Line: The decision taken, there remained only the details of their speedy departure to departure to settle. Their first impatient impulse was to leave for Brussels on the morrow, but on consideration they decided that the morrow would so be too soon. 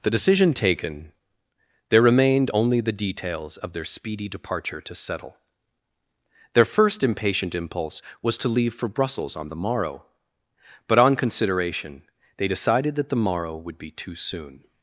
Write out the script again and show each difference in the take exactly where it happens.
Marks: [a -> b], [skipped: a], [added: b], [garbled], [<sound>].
The decision taken, there remained only the details of their speedy departure to [skipped: departure to] settle. Their first impatient impulse was to leave for Brussels on the morrow, but on consideration they decided that the morrow would [skipped: so] be too soon.